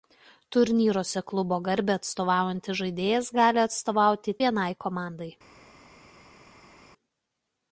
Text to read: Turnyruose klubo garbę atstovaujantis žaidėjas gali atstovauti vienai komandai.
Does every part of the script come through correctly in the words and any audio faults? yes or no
yes